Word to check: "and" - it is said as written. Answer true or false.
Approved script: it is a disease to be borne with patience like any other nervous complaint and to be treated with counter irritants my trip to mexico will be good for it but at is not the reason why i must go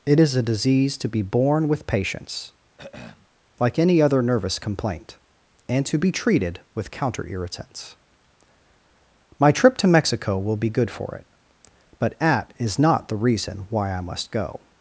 true